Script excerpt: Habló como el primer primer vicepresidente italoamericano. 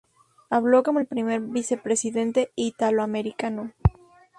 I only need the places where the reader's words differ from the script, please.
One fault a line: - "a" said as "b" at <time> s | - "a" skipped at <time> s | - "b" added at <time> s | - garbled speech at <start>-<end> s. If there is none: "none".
- "primer" skipped at 1.4 s